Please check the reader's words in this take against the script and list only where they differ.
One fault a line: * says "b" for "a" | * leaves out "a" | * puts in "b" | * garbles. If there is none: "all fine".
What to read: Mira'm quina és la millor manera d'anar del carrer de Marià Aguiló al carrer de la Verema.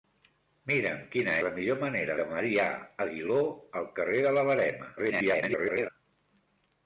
* leaves out "és"
* leaves out "d'anar del carrer"
* garbles